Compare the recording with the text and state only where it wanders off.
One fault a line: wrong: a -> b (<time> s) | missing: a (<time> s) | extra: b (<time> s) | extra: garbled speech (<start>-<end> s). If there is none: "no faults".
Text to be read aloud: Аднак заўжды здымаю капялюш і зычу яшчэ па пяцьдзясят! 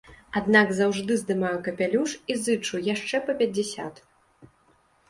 no faults